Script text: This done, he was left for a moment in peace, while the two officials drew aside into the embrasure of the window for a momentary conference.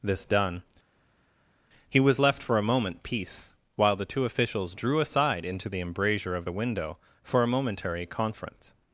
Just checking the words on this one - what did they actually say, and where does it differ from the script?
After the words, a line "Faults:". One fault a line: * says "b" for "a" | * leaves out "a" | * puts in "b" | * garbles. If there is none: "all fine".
This done, he was left for a moment peace, while the two officials drew aside into the embrasure of the window for a momentary conference.
Faults:
* leaves out "in"